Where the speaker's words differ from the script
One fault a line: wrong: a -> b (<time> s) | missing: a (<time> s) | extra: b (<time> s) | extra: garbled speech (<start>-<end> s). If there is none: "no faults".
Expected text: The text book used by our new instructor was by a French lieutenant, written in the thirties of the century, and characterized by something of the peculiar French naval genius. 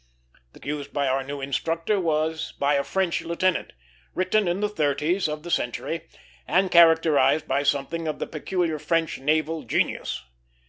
missing: text book (0.6 s)